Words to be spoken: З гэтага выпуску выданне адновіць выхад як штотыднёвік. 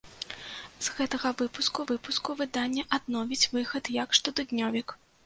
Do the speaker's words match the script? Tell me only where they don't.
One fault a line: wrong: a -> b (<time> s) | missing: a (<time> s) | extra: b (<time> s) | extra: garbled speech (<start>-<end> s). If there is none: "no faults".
extra: выпуску (1.9 s)